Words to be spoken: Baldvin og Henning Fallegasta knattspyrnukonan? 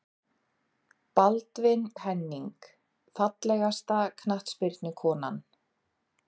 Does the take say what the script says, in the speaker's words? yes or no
no